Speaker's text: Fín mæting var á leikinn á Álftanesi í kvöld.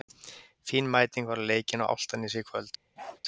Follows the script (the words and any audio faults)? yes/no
no